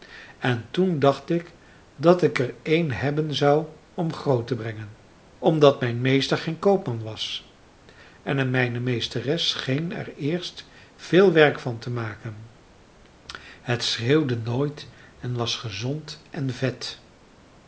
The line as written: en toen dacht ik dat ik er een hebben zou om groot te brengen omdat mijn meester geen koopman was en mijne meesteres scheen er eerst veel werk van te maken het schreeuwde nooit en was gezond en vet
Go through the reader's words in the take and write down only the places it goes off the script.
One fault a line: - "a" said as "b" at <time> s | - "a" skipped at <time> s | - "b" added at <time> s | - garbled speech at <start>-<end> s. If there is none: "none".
none